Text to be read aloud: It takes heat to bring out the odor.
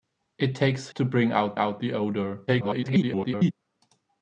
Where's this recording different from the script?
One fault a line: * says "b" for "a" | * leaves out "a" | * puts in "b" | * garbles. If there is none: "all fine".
* leaves out "heat"
* puts in "out"
* garbles